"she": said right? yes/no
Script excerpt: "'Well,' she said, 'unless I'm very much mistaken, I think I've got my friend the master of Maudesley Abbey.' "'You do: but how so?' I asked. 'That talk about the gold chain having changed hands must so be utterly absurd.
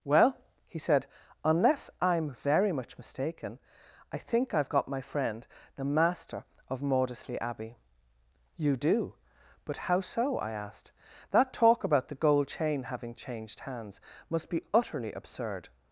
no